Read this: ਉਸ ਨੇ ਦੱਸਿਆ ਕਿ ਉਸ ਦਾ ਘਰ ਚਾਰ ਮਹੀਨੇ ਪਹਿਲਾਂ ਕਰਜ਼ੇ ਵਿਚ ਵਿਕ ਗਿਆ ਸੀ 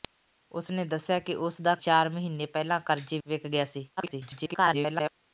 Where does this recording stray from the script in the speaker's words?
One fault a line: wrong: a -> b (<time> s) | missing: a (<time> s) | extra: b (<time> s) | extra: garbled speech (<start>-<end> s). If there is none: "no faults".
missing: ਘਰ (1.8 s)
missing: ਵਿਚ (3.2 s)
extra: garbled speech (4.0-5.1 s)